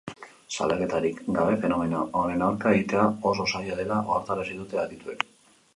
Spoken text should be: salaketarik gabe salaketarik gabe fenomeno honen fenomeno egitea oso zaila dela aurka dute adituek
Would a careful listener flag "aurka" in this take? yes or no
yes